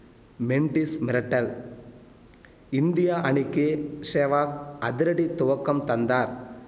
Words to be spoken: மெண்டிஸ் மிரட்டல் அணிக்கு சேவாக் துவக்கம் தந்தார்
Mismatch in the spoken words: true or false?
true